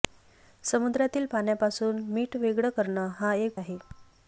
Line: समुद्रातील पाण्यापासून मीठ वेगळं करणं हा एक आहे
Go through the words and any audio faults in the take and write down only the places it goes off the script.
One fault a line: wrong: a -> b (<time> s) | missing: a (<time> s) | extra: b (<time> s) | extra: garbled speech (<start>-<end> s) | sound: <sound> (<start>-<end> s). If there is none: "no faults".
no faults